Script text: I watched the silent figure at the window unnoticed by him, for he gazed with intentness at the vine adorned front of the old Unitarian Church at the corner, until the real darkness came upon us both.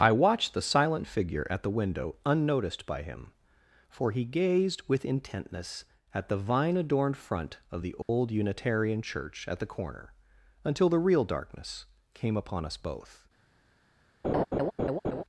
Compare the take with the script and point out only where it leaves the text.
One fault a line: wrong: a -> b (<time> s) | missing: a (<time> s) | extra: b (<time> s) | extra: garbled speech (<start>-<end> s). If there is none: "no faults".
no faults